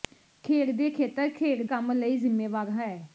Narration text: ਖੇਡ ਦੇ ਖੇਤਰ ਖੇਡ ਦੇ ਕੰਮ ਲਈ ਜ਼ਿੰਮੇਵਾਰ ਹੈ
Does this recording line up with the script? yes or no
no